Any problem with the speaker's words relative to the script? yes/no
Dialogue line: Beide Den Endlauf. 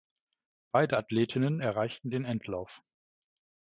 yes